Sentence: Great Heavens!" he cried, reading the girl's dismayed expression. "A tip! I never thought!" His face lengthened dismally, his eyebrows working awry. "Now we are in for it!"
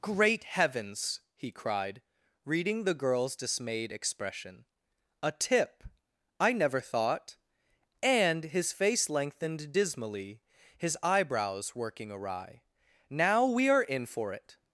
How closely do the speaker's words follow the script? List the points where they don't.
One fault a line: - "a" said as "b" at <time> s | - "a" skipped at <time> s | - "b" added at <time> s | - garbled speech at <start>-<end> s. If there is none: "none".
- "and" added at 8.0 s